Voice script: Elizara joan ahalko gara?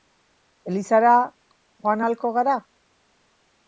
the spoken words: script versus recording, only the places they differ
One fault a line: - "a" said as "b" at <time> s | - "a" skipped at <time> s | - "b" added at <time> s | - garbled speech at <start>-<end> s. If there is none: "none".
none